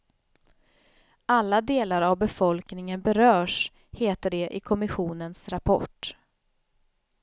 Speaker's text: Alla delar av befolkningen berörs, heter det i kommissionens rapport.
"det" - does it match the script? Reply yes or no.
yes